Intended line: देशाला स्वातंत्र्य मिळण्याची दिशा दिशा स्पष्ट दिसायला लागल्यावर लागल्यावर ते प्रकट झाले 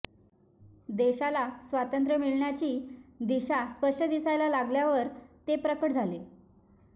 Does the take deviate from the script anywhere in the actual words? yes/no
yes